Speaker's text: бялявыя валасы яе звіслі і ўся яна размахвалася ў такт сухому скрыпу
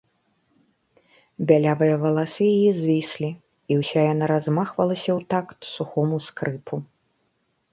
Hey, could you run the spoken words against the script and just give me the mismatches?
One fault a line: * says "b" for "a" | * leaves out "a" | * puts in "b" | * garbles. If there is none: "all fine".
all fine